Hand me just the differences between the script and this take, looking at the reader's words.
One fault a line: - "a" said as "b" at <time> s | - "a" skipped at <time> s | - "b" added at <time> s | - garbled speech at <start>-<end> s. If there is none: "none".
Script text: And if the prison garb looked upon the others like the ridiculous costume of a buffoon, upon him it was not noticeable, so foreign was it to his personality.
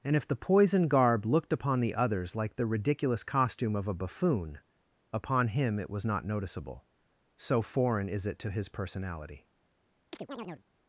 - "prison" said as "poison" at 0.3 s
- "was" said as "is" at 8.1 s